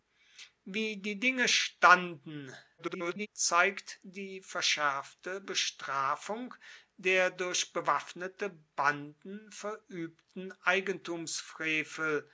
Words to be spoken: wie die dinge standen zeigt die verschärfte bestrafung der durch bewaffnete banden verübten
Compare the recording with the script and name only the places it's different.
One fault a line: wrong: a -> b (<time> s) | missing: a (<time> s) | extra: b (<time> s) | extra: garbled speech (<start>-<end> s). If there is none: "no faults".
extra: garbled speech (2.8-3.3 s)